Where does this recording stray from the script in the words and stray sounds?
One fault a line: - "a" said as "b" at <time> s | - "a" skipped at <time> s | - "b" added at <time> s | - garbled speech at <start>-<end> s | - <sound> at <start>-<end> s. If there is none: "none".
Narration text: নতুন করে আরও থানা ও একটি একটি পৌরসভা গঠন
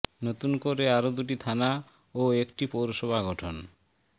- "দুটি" added at 1.2 s
- "একটি" skipped at 2.6 s